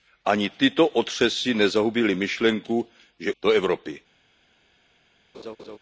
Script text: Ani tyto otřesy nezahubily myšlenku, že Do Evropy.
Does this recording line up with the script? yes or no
yes